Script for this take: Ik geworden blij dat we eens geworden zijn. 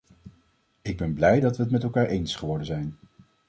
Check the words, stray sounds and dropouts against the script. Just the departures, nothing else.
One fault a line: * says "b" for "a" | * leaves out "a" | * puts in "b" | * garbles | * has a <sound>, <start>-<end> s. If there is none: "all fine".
* says "ben" for "geworden"
* puts in "het met elkaar"